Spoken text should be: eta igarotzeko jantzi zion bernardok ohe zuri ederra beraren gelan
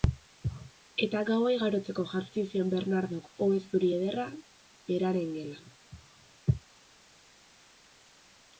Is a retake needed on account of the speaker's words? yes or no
yes